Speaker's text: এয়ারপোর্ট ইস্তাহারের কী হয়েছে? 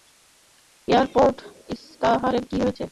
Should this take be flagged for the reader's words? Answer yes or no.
no